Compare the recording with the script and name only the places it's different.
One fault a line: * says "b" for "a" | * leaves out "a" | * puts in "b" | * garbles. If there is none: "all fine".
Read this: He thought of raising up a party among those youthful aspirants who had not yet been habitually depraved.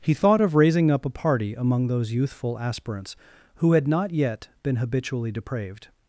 all fine